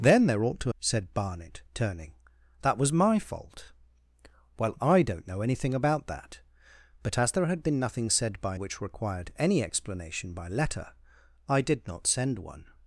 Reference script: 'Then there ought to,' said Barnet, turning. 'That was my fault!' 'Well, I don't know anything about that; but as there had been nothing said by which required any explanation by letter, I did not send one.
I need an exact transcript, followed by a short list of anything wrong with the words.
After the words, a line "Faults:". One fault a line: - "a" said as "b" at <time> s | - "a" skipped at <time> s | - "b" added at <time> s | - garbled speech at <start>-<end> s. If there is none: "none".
'Then there ought to,' said Barnet, turning. 'That was my fault!' 'Well, I don't know anything about that; but as there had been nothing said by which required any explanation by letter, I did not send one.
Faults:
none